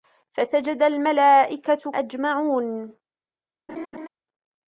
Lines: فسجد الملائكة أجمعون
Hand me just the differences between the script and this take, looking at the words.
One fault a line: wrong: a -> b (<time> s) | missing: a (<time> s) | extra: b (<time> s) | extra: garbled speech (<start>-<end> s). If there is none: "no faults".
no faults